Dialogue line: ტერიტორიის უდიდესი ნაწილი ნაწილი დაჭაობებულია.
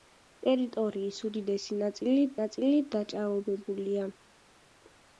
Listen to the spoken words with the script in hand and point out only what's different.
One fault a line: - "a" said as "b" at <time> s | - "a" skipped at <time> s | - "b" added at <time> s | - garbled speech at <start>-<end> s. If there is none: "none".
none